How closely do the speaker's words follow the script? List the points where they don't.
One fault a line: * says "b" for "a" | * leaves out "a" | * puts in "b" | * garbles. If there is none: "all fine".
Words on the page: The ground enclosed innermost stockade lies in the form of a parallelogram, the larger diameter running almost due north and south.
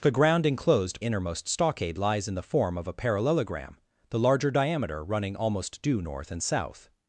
all fine